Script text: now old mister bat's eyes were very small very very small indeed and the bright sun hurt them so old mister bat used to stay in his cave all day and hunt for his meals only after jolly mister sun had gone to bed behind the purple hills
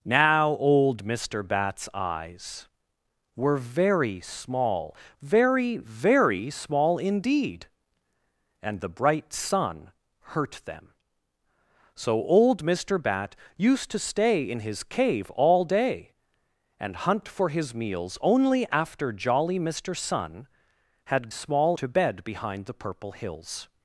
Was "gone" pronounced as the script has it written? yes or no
no